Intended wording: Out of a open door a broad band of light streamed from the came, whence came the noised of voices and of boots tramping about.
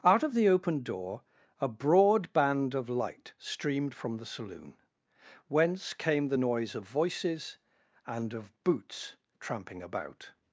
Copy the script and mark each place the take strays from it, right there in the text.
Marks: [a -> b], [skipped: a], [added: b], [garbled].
Out of [a -> the] open door a broad band of light streamed from the [came, -> saloon] whence came the [noised -> noise] of voices and of boots tramping about.